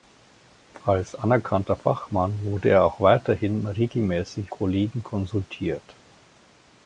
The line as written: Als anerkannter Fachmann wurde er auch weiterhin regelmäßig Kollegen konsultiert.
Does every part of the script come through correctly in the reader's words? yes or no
yes